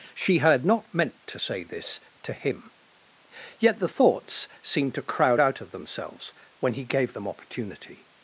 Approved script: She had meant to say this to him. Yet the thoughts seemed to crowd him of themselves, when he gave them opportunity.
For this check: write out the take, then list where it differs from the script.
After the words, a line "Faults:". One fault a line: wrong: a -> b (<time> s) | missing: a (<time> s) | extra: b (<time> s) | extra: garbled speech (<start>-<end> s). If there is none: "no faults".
She had not meant to say this to him. Yet the thoughts seemed to crowd out of themselves, when he gave them opportunity.
Faults:
extra: not (0.7 s)
wrong: him -> out (5.4 s)